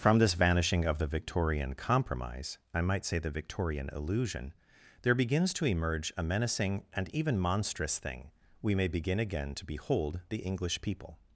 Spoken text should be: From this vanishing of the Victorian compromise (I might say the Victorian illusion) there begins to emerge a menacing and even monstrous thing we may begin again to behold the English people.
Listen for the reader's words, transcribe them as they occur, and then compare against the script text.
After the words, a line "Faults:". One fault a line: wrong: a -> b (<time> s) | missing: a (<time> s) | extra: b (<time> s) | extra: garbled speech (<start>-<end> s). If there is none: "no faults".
From this vanishing of the Victorian compromise (I might say the Victorian illusion) there begins to emerge a menacing and even monstrous thing we may begin again to behold the English people.
Faults:
no faults